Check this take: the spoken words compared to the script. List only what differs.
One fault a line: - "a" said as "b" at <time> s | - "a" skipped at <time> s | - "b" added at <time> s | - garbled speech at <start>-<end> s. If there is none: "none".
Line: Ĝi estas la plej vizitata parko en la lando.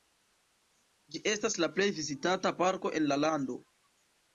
none